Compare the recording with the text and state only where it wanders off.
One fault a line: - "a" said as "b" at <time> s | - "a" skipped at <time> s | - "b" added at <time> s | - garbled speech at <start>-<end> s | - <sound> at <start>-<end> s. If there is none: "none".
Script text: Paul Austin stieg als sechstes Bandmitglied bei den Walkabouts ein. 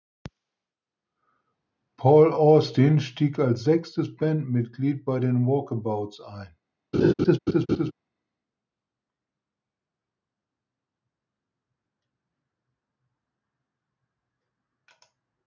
- laugh at 6.9-7.9 s